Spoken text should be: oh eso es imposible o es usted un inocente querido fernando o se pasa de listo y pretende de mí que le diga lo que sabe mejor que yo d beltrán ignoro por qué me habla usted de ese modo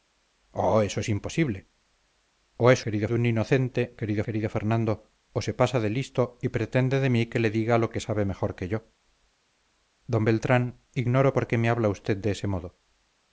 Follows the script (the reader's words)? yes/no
no